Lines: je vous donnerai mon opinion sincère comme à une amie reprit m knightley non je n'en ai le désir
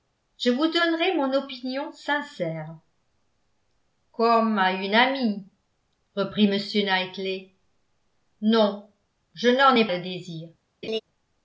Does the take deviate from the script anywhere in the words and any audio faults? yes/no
yes